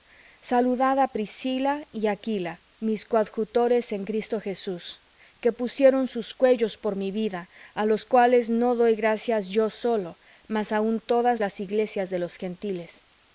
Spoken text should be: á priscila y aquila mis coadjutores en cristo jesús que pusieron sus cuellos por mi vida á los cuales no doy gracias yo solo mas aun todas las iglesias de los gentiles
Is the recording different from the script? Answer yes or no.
no